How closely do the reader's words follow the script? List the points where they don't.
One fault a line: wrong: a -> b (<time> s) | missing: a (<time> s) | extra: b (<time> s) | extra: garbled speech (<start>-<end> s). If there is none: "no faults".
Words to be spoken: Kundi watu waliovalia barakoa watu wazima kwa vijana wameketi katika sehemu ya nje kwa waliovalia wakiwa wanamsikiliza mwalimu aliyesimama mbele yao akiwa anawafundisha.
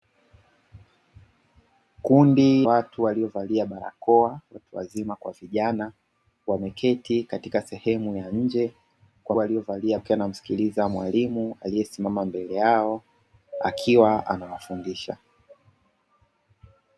no faults